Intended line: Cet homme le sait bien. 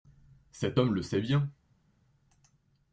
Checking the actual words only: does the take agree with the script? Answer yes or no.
yes